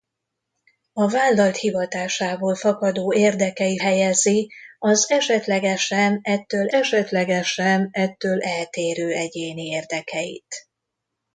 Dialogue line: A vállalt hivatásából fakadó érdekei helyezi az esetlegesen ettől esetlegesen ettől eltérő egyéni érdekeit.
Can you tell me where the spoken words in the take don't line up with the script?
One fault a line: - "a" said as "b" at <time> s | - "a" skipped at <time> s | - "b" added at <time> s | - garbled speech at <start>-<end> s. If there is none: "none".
none